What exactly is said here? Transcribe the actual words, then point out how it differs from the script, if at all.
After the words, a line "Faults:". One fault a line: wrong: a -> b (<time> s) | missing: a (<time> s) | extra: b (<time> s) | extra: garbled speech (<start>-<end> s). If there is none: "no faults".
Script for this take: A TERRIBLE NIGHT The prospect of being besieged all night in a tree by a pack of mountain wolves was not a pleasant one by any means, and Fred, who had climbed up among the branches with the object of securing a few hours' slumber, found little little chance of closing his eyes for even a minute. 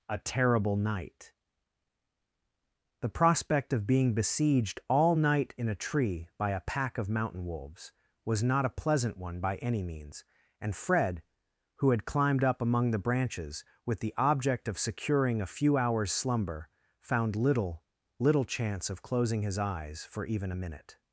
A TERRIBLE NIGHT The prospect of being besieged all night in a tree by a pack of mountain wolves was not a pleasant one by any means, and Fred, who had climbed up among the branches with the object of securing a few hours' slumber, found little little chance of closing his eyes for even a minute.
Faults:
no faults